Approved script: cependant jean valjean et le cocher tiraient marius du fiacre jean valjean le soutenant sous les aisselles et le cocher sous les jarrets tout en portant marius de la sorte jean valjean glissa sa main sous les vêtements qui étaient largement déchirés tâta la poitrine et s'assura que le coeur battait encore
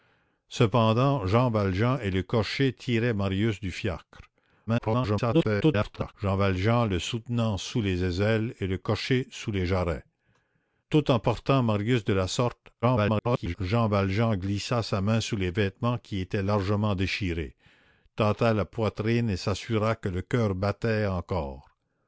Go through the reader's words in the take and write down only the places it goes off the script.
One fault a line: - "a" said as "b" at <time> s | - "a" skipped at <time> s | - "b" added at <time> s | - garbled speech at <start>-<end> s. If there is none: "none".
- garbled speech at 4.7-6.1 s
- garbled speech at 12.8-13.6 s